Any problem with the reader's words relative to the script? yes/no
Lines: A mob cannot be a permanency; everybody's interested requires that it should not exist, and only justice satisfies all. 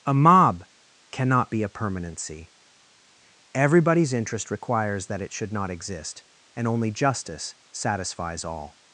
yes